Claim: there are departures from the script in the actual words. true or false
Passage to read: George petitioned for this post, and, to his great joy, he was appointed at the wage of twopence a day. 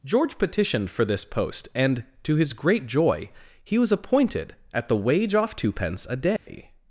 true